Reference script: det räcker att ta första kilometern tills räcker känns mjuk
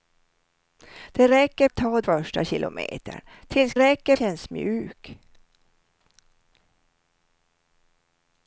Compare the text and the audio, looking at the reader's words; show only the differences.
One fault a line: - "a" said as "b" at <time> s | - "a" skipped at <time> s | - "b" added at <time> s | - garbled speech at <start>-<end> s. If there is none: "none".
none